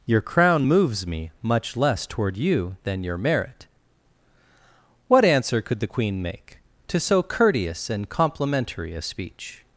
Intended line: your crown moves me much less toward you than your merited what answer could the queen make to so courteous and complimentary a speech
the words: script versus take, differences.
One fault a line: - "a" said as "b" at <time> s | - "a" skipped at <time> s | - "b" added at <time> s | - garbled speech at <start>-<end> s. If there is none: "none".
- "merited" said as "merit" at 3.2 s